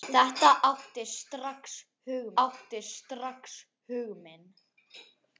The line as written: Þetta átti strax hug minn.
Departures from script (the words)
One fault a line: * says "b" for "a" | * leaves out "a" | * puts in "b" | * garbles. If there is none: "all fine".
* puts in "átti strax hug"